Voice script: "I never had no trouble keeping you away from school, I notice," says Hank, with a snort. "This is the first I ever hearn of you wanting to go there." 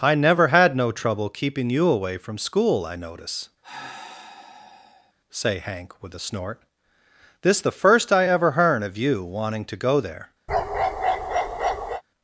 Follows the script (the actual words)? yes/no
no